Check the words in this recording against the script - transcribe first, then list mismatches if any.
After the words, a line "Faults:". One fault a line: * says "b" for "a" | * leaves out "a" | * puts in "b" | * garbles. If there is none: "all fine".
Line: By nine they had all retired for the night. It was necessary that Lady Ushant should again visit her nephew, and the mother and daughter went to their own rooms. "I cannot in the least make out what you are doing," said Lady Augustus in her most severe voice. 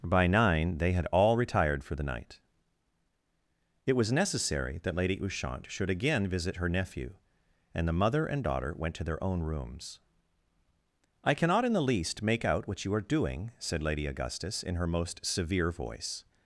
By nine they had all retired for the night. It was necessary that Lady Ushant should again visit her nephew, and the mother and daughter went to their own rooms. "I cannot in the least make out what you are doing," said Lady Augustus in her most severe voice.
Faults:
all fine